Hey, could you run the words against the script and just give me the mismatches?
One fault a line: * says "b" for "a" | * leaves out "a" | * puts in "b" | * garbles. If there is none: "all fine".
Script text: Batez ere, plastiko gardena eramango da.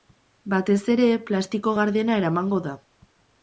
all fine